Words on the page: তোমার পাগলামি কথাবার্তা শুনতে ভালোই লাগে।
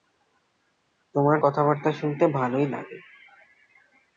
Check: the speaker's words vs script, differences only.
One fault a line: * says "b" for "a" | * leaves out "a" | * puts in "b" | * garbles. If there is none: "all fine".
* leaves out "পাগলামি"